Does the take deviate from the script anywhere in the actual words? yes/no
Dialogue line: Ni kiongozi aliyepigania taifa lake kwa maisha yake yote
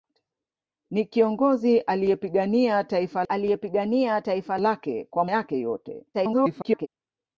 yes